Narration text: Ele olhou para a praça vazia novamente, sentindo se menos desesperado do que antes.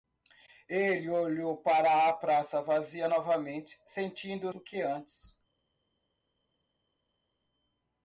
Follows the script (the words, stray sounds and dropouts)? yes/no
no